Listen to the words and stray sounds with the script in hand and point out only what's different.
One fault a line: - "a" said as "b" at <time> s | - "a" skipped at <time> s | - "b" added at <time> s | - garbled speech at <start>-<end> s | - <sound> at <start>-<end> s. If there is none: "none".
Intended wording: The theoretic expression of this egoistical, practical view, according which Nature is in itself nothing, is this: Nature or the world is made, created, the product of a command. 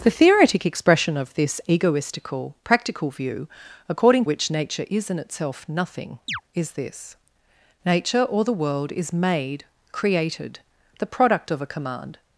- chirp at 6.3-6.4 s